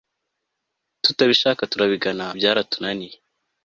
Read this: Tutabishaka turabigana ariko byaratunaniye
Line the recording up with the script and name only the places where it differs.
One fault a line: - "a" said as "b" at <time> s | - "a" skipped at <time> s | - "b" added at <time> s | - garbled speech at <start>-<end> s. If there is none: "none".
- "ariko" skipped at 2.3 s